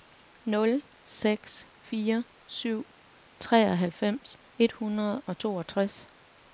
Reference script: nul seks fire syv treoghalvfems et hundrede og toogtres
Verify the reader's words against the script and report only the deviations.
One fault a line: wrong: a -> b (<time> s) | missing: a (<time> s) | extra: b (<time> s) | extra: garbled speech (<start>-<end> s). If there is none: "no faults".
no faults